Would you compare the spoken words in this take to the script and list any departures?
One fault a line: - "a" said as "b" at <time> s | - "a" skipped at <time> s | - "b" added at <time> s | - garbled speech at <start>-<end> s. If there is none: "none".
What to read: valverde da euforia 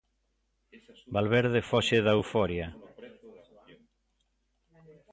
- "foxe" added at 1.7 s